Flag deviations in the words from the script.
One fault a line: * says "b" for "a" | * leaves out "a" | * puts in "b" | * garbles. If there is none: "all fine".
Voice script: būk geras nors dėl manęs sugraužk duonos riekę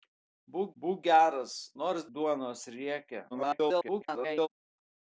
* puts in "būk"
* leaves out "dėl manęs sugraužk"
* garbles